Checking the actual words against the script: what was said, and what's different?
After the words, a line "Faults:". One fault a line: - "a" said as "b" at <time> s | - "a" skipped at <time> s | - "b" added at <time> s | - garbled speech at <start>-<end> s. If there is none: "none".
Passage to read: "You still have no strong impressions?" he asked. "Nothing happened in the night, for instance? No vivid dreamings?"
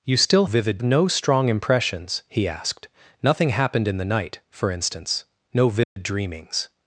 "You still vivid no strong impressions?" he asked. "Nothing happened in the night, for instance? No vivid dreamings?"
Faults:
- "have" said as "vivid" at 0.5 s